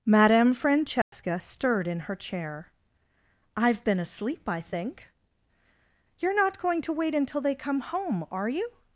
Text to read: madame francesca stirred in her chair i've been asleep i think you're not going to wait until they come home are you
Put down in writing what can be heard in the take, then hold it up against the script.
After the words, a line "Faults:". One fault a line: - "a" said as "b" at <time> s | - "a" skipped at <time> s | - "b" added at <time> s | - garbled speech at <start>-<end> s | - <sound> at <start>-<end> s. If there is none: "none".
madame francesca stirred in her chair i've been asleep i think you're not going to wait until they come home are you
Faults:
- dropout at 1.0-1.1 s